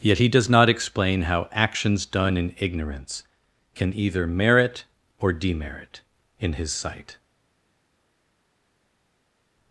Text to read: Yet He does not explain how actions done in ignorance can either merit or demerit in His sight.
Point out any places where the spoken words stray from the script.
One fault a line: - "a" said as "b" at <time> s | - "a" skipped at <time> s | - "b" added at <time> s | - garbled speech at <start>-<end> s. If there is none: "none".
none